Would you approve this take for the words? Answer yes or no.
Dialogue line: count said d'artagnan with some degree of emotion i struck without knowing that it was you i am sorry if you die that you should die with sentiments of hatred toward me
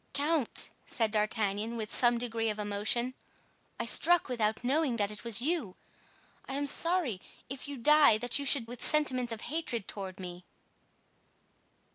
no